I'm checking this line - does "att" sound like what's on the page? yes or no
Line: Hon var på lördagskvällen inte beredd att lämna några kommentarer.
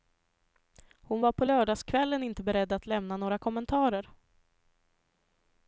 yes